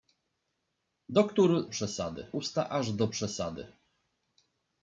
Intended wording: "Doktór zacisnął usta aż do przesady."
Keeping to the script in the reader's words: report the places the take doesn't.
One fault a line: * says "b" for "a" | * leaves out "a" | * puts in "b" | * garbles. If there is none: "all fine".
* says "przesady" for "zacisnął"